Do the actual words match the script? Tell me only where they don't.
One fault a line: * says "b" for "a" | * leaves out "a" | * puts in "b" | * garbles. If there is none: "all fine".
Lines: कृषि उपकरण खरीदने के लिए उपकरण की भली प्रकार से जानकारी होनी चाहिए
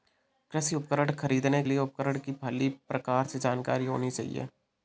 * leaves out "के"